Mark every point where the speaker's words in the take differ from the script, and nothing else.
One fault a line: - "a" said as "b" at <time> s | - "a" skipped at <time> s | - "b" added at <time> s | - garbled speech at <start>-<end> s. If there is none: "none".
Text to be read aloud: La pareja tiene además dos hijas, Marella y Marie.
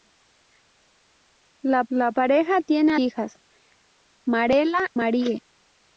- "la" added at 1.9 s
- "además dos" skipped at 2.9 s
- "y" skipped at 4.9 s